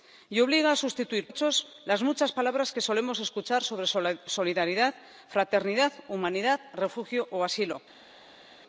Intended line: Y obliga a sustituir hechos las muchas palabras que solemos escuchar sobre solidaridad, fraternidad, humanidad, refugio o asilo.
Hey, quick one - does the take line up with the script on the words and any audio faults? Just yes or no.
yes